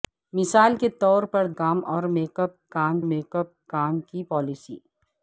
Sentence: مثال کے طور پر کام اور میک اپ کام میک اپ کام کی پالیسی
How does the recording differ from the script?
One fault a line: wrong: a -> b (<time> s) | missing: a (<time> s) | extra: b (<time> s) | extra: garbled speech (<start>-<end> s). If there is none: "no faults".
no faults